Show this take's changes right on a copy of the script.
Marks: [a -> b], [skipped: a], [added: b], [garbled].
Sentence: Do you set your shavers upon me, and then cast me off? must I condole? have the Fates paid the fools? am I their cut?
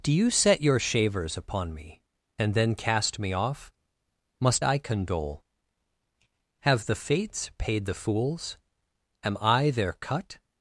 Do you set your shavers upon me, and then cast me off? must I condole? have the Fates paid the fools? am I their cut?